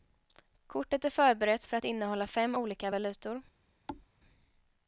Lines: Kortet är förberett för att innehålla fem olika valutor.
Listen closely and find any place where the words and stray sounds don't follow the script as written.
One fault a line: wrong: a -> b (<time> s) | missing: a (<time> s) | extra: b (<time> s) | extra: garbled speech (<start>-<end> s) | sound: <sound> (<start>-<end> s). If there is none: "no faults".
sound: thud (3.9-4.1 s)